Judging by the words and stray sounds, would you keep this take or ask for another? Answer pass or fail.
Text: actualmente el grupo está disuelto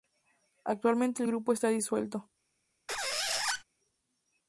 fail